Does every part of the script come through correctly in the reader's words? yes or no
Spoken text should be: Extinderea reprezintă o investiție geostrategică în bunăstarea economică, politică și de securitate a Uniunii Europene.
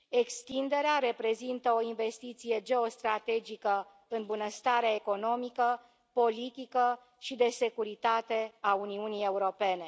yes